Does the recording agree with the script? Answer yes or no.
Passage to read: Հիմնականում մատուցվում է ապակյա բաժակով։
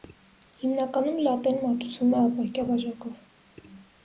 no